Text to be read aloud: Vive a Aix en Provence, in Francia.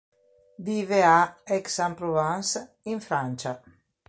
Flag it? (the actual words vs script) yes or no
no